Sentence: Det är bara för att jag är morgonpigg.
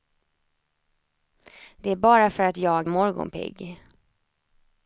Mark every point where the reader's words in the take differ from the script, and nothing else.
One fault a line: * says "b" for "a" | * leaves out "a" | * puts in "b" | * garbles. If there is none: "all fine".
* leaves out "är"